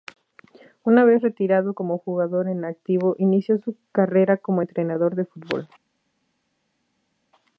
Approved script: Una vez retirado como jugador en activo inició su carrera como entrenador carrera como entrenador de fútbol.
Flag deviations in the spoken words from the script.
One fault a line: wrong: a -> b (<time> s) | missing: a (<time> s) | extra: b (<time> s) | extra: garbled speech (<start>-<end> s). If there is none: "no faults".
missing: carrera como entrenador (5.1 s)